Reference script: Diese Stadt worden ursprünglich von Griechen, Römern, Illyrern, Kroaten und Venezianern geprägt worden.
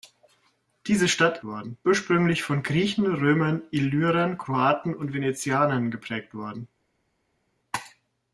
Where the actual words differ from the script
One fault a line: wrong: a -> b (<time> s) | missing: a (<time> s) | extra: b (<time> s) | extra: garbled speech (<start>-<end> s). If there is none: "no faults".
no faults